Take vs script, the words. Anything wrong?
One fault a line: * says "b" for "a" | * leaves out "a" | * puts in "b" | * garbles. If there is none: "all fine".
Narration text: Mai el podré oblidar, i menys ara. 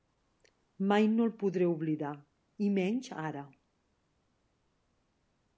* puts in "no"